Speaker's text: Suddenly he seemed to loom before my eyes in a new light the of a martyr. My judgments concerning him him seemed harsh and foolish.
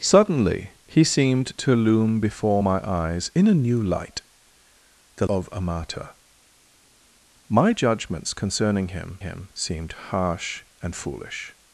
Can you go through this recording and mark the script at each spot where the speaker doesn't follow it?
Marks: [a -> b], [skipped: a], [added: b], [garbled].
Suddenly he seemed to loom before my eyes in a new light the of a martyr. My judgments concerning him him seemed harsh and foolish.